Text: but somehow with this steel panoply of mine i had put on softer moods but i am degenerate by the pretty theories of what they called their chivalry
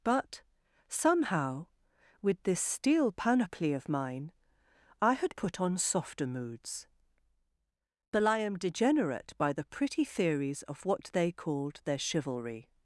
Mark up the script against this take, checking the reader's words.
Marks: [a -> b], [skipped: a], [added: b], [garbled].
but somehow with this steel panoply of mine i had put on softer moods but i am degenerate by the pretty theories of what they called their chivalry